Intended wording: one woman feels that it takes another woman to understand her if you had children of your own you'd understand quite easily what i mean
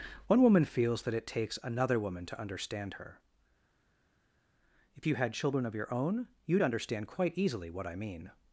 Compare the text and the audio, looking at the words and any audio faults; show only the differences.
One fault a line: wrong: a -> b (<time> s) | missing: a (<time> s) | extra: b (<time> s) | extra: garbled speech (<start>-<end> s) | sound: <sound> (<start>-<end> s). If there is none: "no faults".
no faults